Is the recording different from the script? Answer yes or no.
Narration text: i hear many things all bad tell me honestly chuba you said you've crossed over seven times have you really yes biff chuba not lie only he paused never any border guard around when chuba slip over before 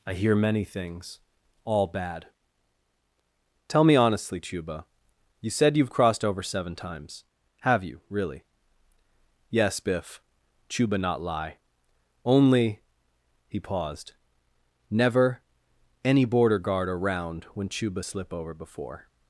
no